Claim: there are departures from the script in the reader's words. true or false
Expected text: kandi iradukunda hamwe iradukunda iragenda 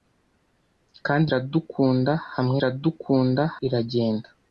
false